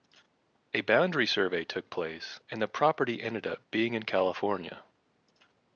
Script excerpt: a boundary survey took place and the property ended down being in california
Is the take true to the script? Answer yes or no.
no